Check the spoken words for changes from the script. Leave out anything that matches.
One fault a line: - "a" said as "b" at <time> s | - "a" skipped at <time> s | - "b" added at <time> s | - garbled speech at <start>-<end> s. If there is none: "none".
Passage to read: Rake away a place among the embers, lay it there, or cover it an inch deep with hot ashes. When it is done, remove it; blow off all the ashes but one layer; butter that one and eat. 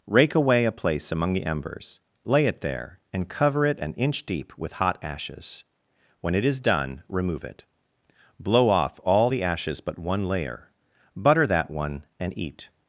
- "or" said as "and" at 3.1 s